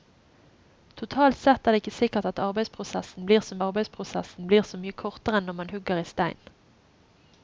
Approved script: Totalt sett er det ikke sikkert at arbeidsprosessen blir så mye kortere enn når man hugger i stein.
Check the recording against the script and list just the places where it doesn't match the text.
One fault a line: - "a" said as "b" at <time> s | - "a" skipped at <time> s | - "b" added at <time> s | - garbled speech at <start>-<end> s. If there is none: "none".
- "arbeidsprosessen blir så" added at 3.6 s